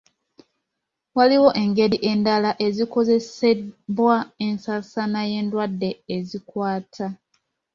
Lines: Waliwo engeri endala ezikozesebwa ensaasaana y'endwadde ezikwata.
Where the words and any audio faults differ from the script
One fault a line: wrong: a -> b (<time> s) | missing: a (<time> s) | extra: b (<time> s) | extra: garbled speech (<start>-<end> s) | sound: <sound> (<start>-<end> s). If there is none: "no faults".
no faults